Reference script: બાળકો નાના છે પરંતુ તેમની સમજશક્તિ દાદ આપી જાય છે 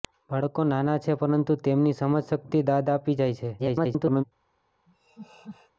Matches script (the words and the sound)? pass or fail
fail